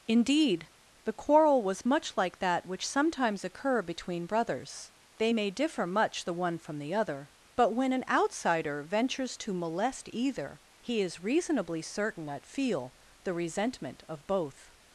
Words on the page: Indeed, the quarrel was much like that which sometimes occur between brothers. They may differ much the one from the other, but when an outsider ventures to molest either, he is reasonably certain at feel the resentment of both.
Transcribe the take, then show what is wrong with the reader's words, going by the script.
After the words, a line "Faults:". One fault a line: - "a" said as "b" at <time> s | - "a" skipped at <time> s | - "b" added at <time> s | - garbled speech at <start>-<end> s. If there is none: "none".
Indeed, the quarrel was much like that which sometimes occur between brothers. They may differ much the one from the other, but when an outsider ventures to molest either, he is reasonably certain at feel the resentment of both.
Faults:
none